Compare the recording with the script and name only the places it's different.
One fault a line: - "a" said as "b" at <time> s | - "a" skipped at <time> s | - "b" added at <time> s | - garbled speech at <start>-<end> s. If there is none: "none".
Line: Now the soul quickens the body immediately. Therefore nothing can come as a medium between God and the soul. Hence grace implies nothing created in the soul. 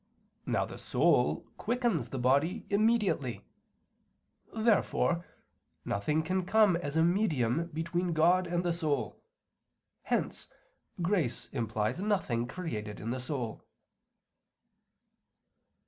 none